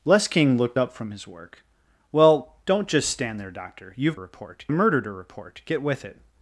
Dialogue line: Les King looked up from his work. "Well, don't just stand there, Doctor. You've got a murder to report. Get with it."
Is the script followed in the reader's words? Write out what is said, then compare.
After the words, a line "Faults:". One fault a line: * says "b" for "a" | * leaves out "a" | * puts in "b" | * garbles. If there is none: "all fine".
Les King looked up from his work. "Well, don't just stand there, Doctor. You've report a murder to report. Get with it."
Faults:
* says "report" for "got"